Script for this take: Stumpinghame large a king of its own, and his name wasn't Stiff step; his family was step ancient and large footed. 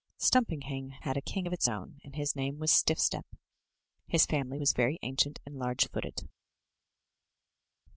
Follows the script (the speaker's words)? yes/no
no